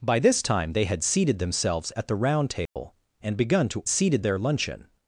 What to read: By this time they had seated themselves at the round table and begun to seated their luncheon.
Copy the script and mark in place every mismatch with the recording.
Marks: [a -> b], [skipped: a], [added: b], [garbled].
By this time they had seated themselves at the round table and begun to seated their luncheon.